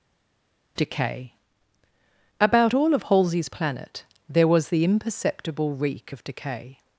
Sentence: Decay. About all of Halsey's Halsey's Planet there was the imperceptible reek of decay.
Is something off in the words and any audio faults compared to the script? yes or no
yes